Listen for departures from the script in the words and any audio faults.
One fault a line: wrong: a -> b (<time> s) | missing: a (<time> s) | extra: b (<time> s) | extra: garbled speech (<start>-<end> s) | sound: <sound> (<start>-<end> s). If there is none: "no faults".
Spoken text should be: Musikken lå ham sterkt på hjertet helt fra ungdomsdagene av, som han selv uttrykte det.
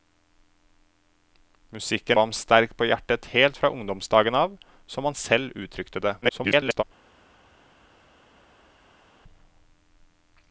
missing: lå (2.2 s)
extra: garbled speech (6.2-6.8 s)